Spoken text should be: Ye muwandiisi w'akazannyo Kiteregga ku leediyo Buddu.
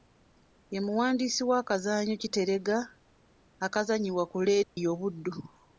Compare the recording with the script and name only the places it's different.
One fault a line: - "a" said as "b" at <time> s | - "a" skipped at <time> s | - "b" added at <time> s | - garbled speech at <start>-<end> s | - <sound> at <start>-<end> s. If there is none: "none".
- "akazannyibwa" added at 3.6 s
- dropout at 4.6-4.8 s